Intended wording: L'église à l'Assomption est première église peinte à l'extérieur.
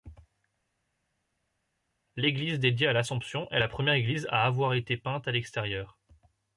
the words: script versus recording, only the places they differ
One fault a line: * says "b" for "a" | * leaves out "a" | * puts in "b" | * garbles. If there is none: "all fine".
* puts in "dédiée"
* puts in "la"
* puts in "à avoir été"